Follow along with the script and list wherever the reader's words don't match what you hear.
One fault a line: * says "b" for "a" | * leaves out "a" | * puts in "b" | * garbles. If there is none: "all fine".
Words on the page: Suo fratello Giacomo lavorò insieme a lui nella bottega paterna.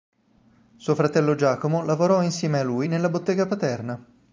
all fine